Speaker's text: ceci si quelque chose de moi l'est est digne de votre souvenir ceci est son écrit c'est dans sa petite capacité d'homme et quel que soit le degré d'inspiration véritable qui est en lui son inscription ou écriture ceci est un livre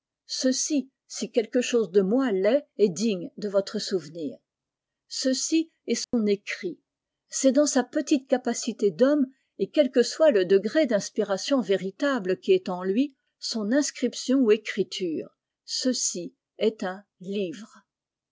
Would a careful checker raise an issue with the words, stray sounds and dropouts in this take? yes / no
yes